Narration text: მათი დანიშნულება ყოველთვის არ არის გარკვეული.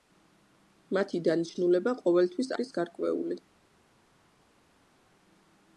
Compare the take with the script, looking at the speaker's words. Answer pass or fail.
fail